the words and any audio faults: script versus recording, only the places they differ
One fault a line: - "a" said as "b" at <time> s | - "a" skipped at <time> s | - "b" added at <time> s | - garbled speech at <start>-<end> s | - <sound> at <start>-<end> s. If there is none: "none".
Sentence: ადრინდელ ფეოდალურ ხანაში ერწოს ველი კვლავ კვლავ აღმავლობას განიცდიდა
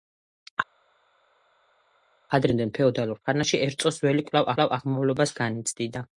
none